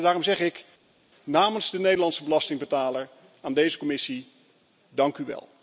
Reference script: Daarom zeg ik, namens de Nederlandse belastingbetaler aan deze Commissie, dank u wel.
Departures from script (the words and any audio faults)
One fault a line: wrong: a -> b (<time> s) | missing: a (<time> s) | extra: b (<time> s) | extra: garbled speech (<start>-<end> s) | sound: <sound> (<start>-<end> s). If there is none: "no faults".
no faults